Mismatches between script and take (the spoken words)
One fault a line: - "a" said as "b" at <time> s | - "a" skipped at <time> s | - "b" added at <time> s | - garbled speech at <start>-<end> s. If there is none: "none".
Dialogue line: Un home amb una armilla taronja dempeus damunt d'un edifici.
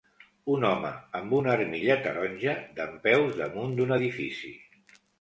none